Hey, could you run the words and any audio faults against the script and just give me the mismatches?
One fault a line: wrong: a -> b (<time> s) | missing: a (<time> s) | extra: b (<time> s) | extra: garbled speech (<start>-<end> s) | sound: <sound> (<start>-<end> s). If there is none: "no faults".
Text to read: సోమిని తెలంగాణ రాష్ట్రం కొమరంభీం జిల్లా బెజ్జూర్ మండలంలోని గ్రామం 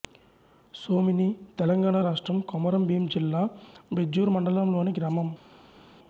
no faults